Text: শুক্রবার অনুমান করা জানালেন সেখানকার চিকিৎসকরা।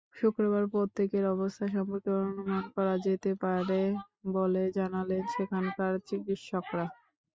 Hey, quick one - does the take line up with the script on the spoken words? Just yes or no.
no